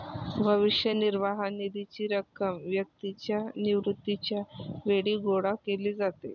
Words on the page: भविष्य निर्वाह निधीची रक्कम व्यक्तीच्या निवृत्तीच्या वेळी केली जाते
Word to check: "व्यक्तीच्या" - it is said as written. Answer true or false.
true